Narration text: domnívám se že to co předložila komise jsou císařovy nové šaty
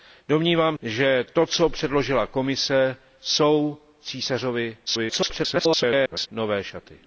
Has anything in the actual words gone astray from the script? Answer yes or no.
yes